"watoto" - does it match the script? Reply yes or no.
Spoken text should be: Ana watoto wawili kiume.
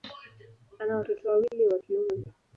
yes